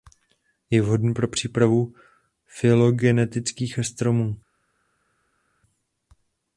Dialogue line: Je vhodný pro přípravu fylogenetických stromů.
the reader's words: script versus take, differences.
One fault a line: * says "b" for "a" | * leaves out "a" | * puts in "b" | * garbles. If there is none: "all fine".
all fine